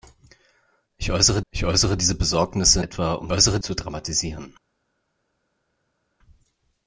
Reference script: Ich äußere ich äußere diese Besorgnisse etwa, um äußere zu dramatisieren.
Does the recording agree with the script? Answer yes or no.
yes